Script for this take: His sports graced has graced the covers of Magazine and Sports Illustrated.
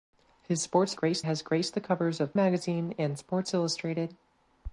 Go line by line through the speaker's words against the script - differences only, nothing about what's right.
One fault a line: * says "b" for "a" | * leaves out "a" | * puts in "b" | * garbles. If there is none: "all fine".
all fine